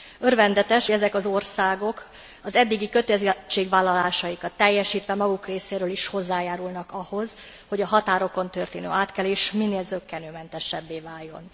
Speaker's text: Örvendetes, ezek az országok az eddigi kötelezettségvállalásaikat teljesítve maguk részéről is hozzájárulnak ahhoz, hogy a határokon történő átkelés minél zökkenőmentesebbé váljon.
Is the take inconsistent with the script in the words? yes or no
no